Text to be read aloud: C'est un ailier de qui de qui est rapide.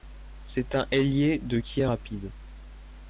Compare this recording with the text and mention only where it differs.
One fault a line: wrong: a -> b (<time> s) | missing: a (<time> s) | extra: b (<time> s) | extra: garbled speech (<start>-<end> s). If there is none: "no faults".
missing: de qui (1.8 s)